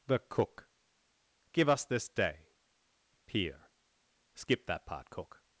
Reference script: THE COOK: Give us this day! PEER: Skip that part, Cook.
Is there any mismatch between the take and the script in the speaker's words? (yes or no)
no